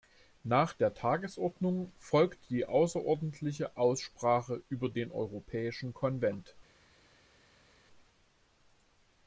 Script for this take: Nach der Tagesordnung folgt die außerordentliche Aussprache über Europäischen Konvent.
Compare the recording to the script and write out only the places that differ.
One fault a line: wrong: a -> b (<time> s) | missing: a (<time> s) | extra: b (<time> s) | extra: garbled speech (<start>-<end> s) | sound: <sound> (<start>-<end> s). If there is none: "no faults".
extra: den (4.9 s)